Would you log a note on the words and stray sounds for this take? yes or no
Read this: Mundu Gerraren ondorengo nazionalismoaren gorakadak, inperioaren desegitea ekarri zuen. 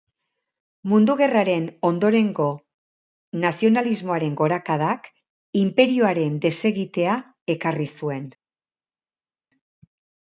no